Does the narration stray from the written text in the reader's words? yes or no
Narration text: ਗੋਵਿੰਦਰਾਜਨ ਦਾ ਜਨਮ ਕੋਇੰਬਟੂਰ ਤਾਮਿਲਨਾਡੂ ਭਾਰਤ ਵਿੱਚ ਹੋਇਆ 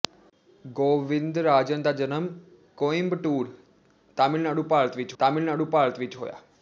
yes